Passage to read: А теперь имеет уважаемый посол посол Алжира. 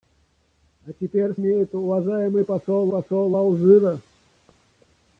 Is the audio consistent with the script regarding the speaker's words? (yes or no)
yes